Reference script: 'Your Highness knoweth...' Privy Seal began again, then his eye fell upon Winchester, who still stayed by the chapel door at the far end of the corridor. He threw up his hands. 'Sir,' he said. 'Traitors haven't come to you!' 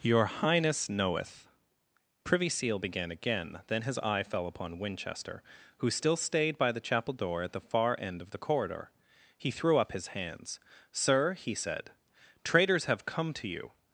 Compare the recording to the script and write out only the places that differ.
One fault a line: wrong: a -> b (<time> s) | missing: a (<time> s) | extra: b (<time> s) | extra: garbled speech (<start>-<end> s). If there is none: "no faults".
wrong: haven't -> have (12.9 s)